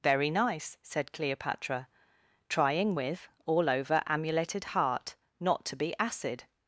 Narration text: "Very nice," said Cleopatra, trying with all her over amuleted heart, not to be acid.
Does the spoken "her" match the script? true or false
false